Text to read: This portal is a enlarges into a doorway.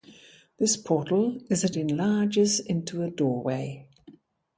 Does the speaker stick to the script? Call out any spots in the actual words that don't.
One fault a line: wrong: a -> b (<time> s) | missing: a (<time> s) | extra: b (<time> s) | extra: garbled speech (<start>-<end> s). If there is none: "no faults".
no faults